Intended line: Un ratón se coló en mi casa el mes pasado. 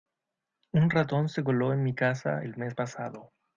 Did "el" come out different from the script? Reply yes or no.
no